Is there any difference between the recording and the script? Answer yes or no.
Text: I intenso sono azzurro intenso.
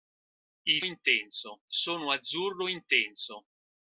no